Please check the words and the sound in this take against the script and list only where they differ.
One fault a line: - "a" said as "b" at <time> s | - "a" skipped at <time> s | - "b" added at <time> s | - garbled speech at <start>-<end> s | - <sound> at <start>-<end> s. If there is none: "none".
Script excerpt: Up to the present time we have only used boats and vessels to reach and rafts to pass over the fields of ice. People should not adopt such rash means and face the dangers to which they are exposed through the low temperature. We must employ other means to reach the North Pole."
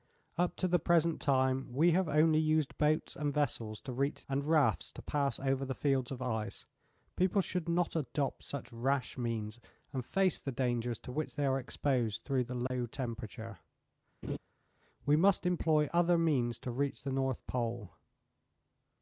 - dropout at 12.7-12.7 s
- laugh at 14.2-14.4 s